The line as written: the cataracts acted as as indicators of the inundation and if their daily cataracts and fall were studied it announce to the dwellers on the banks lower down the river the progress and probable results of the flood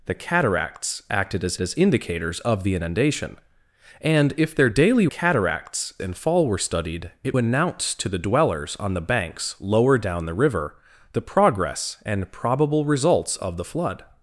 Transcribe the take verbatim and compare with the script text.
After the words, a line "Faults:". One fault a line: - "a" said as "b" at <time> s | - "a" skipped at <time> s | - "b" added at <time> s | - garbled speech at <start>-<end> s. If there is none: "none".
the cataracts acted as as indicators of the inundation and if their daily cataracts and fall were studied it announce to the dwellers on the banks lower down the river the progress and probable results of the flood
Faults:
none